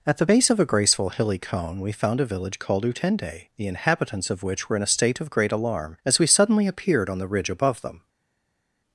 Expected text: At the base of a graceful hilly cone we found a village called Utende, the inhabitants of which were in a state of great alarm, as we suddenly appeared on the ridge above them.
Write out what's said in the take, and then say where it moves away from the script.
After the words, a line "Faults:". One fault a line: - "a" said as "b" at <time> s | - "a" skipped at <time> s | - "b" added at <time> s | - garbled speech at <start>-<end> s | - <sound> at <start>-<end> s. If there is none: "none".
At the base of a graceful hilly cone we found a village called Utende, the inhabitants of which were in a state of great alarm, as we suddenly appeared on the ridge above them.
Faults:
none